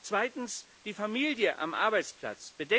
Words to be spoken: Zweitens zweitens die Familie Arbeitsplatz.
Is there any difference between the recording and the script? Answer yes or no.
yes